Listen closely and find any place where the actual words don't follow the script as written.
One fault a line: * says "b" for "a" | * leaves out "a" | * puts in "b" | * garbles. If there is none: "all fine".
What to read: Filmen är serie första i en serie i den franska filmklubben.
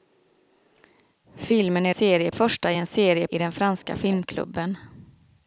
all fine